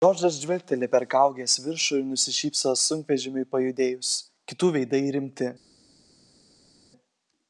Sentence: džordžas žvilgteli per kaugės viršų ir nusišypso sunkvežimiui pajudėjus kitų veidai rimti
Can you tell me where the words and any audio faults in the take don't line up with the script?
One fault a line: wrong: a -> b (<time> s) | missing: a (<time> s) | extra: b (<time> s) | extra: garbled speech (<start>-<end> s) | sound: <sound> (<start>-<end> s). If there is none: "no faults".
no faults